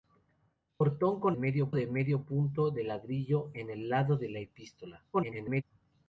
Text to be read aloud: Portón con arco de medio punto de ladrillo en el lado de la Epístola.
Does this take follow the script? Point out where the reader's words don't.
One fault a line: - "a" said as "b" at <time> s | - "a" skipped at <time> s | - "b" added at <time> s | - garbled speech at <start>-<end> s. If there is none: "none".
- "arco" said as "medio" at 1.3 s
- garbled speech at 5.1-5.6 s